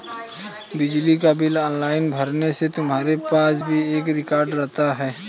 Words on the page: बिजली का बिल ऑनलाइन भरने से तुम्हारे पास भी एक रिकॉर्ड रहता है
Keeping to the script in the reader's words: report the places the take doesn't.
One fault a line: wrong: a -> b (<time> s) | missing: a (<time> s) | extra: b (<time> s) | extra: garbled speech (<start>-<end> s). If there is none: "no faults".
no faults